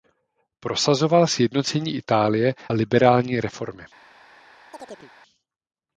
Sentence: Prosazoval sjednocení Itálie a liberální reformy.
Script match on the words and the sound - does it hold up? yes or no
no